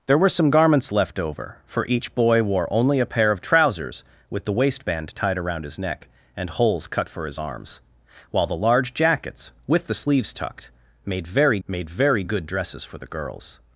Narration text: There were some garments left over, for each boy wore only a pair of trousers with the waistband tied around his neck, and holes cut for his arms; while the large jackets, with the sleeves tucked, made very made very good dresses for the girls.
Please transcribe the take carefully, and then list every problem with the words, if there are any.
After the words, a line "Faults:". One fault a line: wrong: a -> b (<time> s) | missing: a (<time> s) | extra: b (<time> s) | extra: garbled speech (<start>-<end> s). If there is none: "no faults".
There were some garments left over, for each boy wore only a pair of trousers with the waistband tied around his neck, and holes cut for his arms; while the large jackets, with the sleeves tucked, made very made very good dresses for the girls.
Faults:
no faults